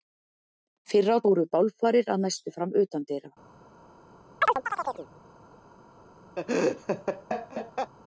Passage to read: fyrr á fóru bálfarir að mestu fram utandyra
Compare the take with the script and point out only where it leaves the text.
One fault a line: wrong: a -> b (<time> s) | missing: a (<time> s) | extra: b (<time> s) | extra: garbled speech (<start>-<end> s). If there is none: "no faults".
no faults